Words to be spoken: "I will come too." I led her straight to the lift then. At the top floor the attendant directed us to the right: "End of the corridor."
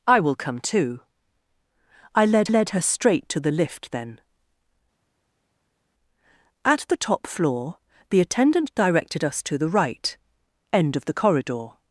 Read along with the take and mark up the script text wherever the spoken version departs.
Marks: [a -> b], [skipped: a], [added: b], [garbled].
"I will come too." I led [added: led] her straight to the lift then. At the top floor the attendant directed us to the right: "End of the corridor."